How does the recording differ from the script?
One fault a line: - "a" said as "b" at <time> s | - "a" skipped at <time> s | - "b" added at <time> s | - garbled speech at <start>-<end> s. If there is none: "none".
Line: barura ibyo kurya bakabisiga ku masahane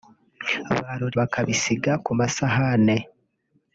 - "ibyo kurya" skipped at 1.1 s